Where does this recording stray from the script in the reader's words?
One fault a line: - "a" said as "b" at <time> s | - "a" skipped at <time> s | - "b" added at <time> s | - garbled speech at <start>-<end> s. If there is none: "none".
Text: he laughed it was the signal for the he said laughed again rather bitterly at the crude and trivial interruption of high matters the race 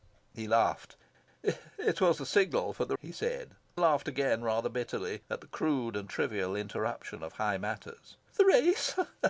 none